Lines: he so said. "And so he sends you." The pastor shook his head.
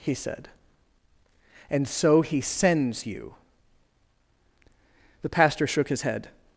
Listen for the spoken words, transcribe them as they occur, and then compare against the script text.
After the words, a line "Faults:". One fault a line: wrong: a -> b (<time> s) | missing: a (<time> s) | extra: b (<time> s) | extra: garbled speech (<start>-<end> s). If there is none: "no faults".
he said. "And so he sends you." The pastor shook his head.
Faults:
missing: so (0.1 s)